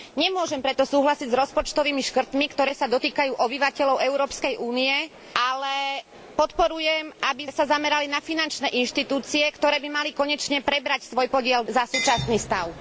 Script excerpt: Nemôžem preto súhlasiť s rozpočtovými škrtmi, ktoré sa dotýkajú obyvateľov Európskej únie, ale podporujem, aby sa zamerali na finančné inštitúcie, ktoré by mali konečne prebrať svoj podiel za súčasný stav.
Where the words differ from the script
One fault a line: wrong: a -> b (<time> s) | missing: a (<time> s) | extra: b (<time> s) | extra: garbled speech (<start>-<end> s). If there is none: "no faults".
no faults